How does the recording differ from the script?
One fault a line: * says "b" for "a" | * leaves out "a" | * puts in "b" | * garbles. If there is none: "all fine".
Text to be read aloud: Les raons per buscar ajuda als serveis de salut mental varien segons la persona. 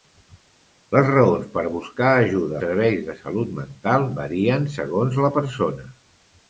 * leaves out "als"